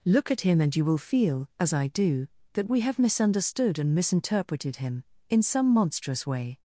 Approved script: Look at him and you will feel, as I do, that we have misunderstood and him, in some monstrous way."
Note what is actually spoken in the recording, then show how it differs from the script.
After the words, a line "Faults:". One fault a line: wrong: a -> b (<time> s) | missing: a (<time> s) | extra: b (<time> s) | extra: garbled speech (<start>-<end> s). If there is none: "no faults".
Look at him and you will feel, as I do, that we have misunderstood and misinterpreted him, in some monstrous way."
Faults:
extra: misinterpreted (3.9 s)